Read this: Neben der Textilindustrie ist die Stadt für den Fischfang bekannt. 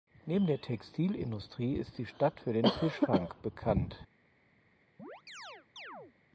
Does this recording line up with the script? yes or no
yes